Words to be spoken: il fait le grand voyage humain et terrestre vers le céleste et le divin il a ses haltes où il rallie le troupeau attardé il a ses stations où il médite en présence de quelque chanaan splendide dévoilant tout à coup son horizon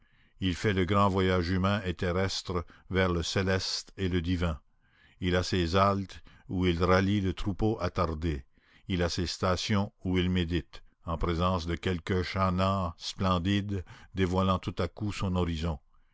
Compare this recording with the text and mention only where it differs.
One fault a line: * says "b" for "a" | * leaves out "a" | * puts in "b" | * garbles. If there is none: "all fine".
all fine